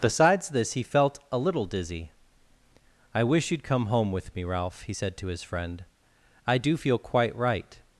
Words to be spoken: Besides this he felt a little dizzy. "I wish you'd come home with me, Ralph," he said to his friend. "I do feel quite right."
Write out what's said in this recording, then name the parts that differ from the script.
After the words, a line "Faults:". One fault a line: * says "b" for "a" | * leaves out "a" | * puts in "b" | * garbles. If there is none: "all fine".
Besides this he felt a little dizzy. "I wish you'd come home with me, Ralph," he said to his friend. "I do feel quite right."
Faults:
all fine